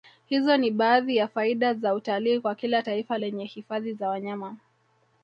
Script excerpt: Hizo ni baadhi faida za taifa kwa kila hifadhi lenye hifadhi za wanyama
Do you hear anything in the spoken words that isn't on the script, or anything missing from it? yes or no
yes